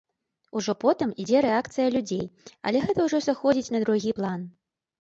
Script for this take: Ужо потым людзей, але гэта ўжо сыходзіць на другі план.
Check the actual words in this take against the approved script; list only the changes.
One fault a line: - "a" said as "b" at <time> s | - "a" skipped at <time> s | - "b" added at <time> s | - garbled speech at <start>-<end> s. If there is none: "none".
- "ідзе рэакцыя" added at 1.2 s